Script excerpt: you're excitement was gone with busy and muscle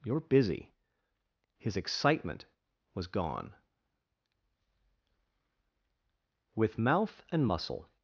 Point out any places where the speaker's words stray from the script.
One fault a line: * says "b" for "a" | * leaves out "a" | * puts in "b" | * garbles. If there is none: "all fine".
* puts in "busy his"
* says "mouth" for "busy"